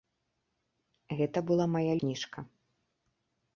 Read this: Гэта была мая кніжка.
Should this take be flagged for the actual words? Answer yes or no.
no